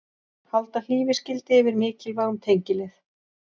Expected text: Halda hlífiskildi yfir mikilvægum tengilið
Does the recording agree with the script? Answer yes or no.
yes